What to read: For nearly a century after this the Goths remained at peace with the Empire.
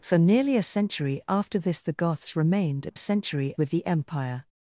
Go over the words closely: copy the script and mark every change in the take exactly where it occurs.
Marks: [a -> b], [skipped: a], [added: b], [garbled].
For nearly a century after this the Goths remained at [peace -> century] with the Empire.